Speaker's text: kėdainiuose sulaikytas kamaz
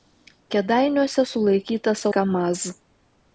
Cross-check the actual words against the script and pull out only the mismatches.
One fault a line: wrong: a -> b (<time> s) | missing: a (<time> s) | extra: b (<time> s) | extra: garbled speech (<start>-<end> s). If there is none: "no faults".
no faults